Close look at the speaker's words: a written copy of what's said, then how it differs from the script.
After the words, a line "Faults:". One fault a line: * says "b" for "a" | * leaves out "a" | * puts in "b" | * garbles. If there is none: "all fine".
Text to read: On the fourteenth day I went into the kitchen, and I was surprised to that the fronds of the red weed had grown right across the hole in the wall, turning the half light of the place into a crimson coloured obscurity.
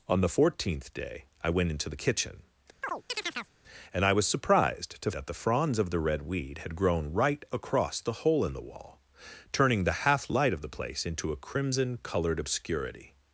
On the fourteenth day I went into the kitchen, and I was surprised to that the fronds of the red weed had grown right across the hole in the wall, turning the half light of the place into a crimson coloured obscurity.
Faults:
all fine